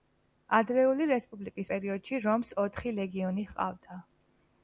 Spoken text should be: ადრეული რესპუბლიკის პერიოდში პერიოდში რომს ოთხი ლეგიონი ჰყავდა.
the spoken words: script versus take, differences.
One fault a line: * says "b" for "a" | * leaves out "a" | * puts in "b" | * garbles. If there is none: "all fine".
* leaves out "პერიოდში"